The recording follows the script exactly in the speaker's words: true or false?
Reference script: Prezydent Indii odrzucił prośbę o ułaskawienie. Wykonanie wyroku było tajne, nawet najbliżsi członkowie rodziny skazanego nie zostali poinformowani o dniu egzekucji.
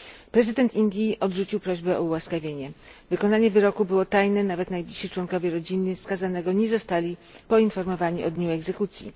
true